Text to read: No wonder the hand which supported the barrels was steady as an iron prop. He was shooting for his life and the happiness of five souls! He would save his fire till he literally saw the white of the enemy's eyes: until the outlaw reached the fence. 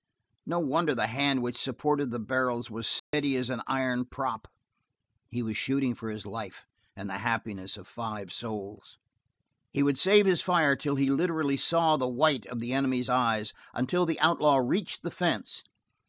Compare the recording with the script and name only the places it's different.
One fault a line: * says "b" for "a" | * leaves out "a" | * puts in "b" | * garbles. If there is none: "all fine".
all fine